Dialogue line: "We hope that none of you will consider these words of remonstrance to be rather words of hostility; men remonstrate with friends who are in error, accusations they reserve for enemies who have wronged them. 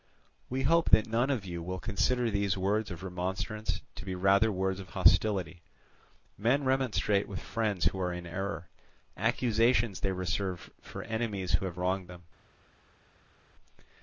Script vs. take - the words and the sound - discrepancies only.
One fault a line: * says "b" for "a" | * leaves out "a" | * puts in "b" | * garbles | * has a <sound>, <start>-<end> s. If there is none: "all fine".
all fine